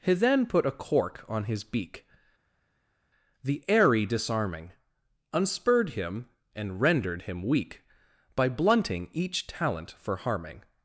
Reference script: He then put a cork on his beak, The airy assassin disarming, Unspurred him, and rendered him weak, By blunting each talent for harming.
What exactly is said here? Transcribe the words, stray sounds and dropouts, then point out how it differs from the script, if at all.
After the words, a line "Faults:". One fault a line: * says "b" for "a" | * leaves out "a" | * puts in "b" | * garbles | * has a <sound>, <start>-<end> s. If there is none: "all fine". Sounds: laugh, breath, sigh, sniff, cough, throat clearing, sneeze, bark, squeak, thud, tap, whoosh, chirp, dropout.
He then put a cork on his beak, The airy disarming, Unspurred him, and rendered him weak, By blunting each talent for harming.
Faults:
* leaves out "assassin"